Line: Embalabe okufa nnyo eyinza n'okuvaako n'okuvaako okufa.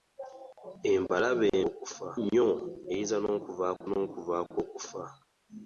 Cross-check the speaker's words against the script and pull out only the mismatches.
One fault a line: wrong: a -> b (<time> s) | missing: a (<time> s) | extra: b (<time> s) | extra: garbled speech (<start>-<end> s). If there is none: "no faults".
no faults